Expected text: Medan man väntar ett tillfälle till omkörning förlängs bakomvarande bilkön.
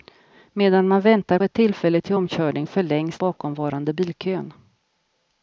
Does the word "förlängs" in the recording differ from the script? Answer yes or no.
no